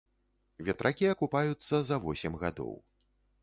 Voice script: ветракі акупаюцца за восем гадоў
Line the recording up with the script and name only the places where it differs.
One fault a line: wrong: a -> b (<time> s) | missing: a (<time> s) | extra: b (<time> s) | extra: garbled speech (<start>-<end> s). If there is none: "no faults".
no faults